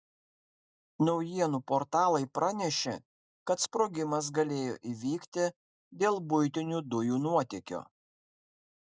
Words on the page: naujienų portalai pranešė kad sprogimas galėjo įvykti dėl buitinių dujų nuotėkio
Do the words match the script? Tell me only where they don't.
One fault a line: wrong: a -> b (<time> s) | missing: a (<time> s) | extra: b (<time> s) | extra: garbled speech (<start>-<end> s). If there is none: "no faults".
no faults